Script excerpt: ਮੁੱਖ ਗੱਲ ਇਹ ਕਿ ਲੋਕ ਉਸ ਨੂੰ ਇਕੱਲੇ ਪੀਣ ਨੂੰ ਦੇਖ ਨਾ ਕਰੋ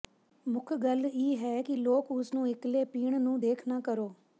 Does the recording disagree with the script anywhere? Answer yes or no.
yes